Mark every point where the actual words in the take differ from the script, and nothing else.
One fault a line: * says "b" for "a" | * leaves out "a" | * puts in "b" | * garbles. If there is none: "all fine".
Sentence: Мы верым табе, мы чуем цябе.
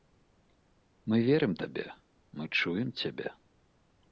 all fine